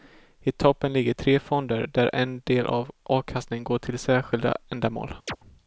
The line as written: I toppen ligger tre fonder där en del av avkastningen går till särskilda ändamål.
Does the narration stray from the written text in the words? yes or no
no